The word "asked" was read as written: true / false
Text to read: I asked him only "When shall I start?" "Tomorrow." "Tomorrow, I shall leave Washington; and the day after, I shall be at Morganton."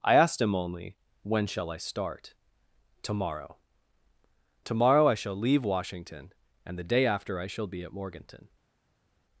true